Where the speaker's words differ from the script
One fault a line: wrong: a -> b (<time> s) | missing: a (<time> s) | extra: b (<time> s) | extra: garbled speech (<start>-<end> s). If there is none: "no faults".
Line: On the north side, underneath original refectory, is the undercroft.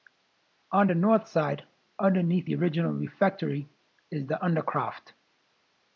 extra: the (2.4 s)